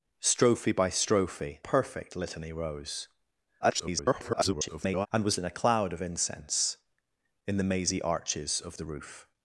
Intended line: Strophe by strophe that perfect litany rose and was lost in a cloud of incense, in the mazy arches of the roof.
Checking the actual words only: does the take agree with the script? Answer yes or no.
no